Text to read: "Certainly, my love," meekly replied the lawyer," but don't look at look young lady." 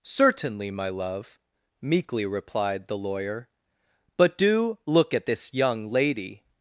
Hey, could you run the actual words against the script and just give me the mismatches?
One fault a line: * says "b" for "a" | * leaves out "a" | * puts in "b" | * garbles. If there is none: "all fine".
* says "do" for "don't"
* says "this" for "look"